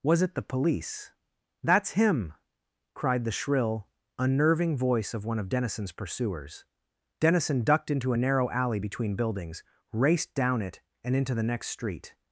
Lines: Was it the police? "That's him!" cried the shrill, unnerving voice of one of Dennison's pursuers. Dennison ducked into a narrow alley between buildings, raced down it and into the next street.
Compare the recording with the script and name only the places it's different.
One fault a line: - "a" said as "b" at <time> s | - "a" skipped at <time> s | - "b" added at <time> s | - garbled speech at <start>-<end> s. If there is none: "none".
none